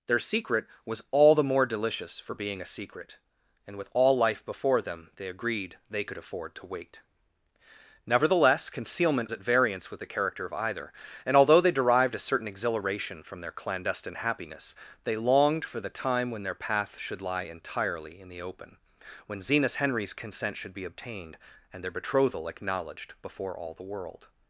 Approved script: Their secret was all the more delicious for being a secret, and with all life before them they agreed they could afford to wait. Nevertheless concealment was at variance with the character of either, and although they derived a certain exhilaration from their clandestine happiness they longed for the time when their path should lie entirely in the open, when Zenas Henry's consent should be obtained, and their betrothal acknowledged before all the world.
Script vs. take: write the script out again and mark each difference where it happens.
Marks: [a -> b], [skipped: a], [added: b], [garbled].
Their secret was all the more delicious for being a secret, and with all life before them they agreed they could afford to wait. Nevertheless concealment [skipped: was] at variance with the character of either, and although they derived a certain exhilaration from their clandestine happiness they longed for the time when their path should lie entirely in the open, when Zenas Henry's consent should be obtained, and their betrothal acknowledged before all the world.